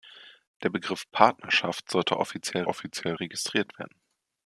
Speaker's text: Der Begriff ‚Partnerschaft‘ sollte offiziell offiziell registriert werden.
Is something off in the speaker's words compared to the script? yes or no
no